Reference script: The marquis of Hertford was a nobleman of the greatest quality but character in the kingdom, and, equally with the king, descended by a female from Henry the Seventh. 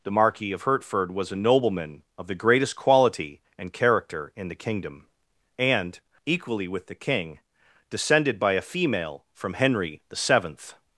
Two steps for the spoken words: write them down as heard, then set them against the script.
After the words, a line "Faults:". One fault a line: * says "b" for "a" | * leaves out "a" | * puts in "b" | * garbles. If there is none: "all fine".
The marquis of Hertford was a nobleman of the greatest quality and character in the kingdom, and, equally with the king, descended by a female from Henry the Seventh.
Faults:
* says "and" for "but"